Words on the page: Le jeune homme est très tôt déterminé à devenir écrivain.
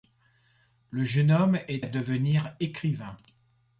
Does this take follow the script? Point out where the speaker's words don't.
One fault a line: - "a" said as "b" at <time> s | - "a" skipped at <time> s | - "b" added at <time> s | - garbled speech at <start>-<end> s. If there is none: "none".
- "très tôt déterminé" skipped at 1.9 s